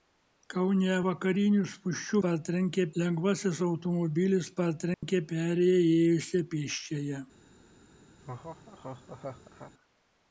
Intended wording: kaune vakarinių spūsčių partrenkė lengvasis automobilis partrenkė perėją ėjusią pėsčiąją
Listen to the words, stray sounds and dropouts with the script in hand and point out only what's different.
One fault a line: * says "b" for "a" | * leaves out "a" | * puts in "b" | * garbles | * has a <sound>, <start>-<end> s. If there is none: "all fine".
* has a dropout, 4.9-5.0 s
* has a laugh, 8.2-9.7 s